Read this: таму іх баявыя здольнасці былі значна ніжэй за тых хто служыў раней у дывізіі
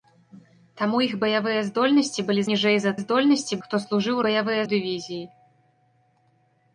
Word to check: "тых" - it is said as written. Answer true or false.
false